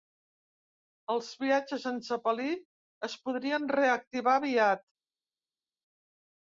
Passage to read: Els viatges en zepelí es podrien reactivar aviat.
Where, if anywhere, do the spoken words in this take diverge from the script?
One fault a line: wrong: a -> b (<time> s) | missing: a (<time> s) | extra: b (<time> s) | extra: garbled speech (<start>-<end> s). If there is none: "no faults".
no faults